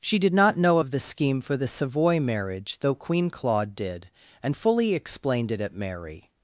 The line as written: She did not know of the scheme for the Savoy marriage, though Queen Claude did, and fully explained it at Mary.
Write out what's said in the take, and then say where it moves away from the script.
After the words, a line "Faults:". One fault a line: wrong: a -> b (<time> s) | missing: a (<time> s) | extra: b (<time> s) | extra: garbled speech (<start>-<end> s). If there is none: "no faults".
She did not know of the scheme for the Savoy marriage, though Queen Claude did, and fully explained it at Mary.
Faults:
no faults